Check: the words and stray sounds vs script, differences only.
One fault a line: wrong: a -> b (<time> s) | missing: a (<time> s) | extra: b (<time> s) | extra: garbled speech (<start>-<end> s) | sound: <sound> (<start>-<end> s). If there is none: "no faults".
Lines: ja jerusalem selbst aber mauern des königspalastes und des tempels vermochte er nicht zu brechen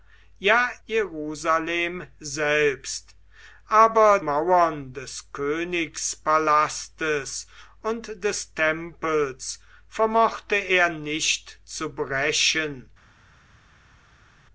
no faults